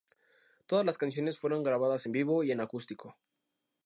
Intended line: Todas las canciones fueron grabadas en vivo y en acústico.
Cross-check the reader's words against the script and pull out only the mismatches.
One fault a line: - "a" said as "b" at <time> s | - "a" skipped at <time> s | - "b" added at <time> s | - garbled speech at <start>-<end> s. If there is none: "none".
none